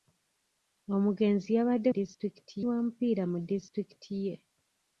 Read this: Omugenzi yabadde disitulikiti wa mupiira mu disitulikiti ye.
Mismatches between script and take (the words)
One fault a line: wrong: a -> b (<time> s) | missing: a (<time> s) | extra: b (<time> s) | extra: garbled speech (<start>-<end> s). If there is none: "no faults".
no faults